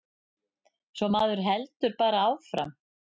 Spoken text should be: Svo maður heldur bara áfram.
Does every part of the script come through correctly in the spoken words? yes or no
yes